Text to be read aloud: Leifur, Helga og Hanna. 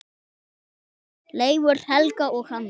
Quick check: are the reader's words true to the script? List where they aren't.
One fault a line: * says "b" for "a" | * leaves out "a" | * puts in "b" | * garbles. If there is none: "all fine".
all fine